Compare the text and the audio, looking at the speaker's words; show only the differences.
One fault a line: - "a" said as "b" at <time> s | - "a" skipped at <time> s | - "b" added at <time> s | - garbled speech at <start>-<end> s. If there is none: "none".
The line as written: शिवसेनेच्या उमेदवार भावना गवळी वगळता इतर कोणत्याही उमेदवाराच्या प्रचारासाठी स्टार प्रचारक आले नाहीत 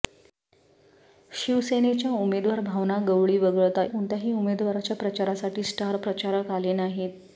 - "इतर" skipped at 3.8 s